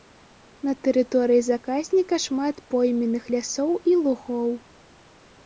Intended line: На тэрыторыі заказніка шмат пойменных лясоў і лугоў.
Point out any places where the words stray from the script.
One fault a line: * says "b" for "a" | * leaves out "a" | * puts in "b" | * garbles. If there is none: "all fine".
all fine